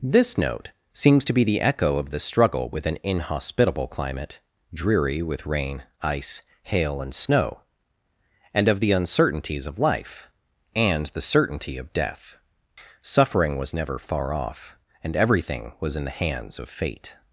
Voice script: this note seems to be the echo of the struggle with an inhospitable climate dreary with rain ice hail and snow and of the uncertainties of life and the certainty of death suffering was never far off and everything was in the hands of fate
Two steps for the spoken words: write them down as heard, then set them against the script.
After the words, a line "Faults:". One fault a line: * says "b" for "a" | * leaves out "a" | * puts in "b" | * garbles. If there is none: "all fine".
this note seems to be the echo of the struggle with an inhospitable climate dreary with rain ice hail and snow and of the uncertainties of life and the certainty of death suffering was never far off and everything was in the hands of fate
Faults:
all fine